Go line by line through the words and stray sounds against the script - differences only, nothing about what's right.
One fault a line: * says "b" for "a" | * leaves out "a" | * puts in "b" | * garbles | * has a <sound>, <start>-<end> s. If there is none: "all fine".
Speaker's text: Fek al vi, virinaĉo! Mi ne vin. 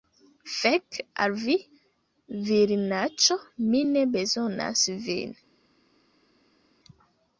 * puts in "bezonas"